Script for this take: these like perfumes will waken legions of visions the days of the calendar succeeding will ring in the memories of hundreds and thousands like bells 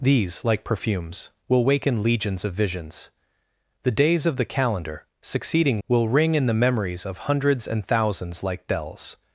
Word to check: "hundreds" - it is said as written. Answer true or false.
true